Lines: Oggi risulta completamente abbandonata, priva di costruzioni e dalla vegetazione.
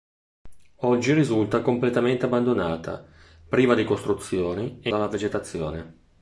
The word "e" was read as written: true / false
true